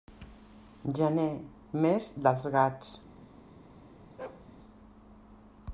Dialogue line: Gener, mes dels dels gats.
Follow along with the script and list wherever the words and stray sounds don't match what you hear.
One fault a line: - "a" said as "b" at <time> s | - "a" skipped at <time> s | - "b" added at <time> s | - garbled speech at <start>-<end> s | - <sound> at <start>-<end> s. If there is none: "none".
- "dels" skipped at 2.5 s
- bark at 4.2-4.5 s